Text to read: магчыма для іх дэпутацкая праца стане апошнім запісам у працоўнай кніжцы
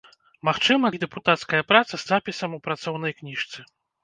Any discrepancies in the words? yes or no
yes